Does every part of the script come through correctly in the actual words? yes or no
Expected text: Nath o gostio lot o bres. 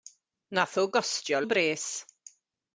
no